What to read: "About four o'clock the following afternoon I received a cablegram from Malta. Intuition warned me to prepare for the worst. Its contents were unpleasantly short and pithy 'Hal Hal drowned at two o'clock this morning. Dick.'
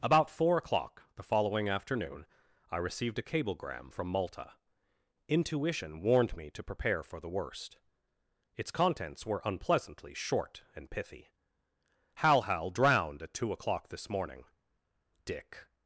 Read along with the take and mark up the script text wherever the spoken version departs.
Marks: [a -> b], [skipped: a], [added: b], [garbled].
"About four o'clock the following afternoon I received a cablegram from Malta. Intuition warned me to prepare for the worst. Its contents were unpleasantly short and pithy 'Hal Hal drowned at two o'clock this morning. Dick.'